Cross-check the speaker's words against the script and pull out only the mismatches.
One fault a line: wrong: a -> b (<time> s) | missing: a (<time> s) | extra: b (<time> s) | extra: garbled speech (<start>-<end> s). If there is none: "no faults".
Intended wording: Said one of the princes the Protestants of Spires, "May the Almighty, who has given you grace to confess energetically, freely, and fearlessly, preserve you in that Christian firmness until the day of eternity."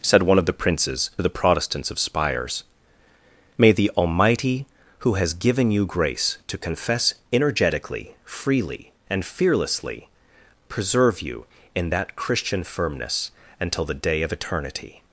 no faults